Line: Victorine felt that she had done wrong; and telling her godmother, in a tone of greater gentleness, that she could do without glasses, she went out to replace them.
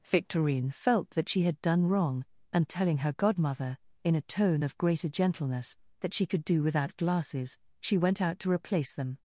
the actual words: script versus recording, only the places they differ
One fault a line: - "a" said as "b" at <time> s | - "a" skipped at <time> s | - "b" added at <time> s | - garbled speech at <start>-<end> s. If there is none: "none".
none